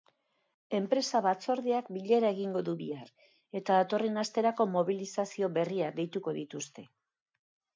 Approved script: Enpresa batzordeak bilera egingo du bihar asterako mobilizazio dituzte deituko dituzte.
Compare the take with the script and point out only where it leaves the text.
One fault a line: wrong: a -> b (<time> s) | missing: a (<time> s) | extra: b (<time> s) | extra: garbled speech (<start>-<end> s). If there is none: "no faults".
extra: eta datorren (3.6 s)
wrong: dituzte -> berriak (5.6 s)